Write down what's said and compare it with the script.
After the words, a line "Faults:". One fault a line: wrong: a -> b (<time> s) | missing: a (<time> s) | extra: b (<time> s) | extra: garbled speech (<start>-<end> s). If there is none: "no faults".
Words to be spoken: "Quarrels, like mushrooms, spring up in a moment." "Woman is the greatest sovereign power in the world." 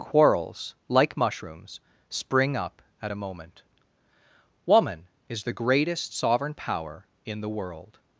"Quarrels, like mushrooms, spring up at a moment." "Woman is the greatest sovereign power in the world."
Faults:
wrong: in -> at (3.0 s)